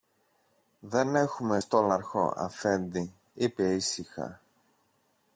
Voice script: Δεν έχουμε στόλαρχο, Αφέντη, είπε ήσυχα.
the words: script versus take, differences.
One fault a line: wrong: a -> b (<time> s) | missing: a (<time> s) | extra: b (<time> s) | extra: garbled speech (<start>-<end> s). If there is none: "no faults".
no faults